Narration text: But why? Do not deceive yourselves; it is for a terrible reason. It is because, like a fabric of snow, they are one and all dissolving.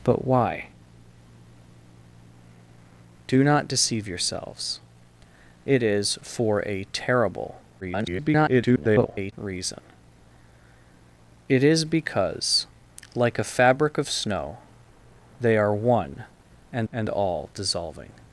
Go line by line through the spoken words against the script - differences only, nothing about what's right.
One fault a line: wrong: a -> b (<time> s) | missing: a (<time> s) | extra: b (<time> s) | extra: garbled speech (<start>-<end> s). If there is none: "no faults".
extra: garbled speech (7.8-9.3 s)
extra: and (16.9 s)